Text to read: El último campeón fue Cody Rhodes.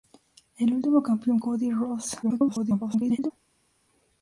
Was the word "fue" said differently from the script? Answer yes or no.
yes